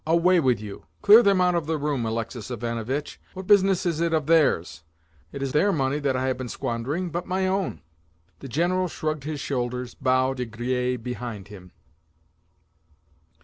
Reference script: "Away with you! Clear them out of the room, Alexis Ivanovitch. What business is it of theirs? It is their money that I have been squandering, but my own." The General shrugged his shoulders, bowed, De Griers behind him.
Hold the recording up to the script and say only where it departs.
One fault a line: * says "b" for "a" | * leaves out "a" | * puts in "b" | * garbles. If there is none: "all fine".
all fine